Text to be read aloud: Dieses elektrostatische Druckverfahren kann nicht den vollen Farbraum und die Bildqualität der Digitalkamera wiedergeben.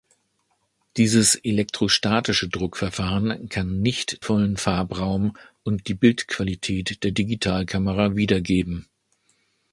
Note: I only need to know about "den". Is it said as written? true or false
false